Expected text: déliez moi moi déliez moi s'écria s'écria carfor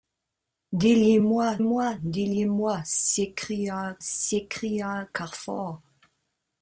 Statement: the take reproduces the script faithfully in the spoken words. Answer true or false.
true